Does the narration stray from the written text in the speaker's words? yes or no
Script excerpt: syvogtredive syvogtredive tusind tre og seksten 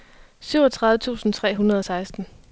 yes